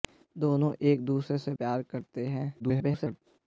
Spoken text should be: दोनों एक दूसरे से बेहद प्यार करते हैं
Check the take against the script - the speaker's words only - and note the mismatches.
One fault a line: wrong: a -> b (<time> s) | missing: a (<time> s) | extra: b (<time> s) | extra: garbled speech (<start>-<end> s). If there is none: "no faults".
missing: बेहद (1.5 s)
extra: garbled speech (2.6-3.2 s)